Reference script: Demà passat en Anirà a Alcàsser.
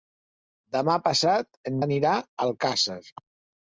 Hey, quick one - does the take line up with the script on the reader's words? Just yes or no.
yes